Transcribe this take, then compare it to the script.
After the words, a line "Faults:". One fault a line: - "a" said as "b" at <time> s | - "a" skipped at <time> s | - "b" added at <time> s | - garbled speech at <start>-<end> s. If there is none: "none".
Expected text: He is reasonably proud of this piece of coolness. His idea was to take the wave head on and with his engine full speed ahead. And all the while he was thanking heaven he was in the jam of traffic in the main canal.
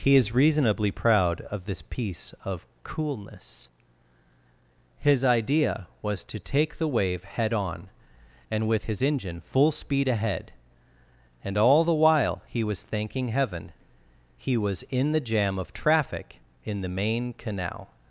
He is reasonably proud of this piece of coolness. His idea was to take the wave head on and with his engine full speed ahead. And all the while he was thanking heaven he was in the jam of traffic in the main canal.
Faults:
none